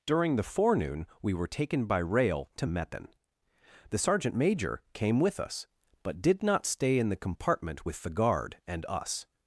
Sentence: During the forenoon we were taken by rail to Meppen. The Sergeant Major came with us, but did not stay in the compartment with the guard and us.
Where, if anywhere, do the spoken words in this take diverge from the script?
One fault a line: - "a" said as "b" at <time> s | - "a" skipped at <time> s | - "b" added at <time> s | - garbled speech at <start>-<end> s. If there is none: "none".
none